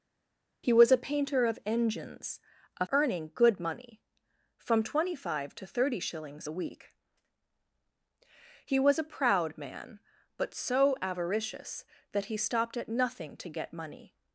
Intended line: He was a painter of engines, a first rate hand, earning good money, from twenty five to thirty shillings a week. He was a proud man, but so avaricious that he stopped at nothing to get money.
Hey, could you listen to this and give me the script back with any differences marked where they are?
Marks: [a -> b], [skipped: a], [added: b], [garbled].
He was a painter of engines, a [skipped: first rate hand,] earning good money, from twenty five to thirty shillings a week. He was a proud man, but so avaricious that he stopped at nothing to get money.